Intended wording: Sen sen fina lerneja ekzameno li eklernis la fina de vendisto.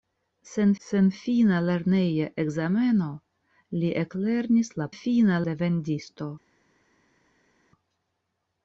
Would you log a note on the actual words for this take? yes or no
no